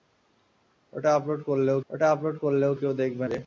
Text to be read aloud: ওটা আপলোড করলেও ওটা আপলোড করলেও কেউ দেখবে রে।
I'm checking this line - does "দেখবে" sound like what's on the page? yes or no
yes